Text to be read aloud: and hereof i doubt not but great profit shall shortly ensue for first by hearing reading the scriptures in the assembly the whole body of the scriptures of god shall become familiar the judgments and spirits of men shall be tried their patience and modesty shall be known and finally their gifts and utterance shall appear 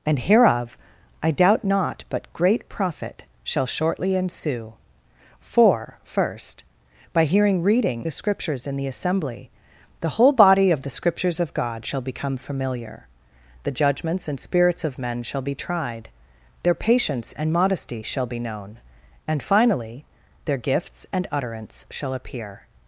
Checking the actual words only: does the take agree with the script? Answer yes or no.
yes